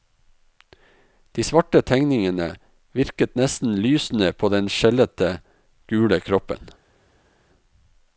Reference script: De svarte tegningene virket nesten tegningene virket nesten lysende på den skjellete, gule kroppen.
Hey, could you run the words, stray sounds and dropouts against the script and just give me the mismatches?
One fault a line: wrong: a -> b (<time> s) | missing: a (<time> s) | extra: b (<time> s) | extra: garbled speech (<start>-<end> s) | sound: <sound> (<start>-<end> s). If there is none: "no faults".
missing: tegningene virket nesten (3.8 s)